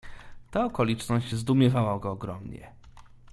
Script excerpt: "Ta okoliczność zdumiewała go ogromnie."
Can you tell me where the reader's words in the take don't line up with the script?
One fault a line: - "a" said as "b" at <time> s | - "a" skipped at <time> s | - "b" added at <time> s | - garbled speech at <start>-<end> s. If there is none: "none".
none